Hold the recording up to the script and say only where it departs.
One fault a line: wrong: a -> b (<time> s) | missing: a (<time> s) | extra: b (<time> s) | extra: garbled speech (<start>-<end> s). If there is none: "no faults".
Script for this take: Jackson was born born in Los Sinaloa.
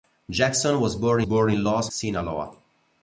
no faults